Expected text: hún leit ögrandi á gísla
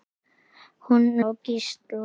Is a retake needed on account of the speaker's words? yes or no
yes